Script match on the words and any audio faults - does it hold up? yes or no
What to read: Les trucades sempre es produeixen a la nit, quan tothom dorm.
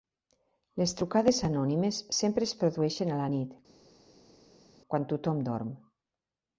no